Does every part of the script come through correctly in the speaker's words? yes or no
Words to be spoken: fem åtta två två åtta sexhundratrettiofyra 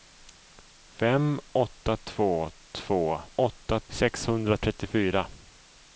yes